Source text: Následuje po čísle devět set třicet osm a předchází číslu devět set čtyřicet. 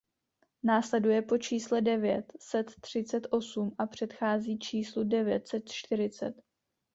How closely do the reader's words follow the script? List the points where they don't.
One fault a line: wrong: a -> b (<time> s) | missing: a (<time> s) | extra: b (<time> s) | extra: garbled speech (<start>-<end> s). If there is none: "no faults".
no faults